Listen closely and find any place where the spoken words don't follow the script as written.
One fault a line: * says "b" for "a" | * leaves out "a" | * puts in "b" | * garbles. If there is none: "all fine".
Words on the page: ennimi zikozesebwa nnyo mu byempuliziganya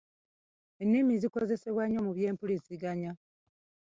all fine